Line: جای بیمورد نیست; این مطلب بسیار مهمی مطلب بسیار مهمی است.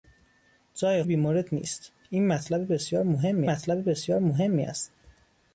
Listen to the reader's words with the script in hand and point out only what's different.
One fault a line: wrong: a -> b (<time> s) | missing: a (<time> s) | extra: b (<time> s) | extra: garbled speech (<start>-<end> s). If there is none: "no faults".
no faults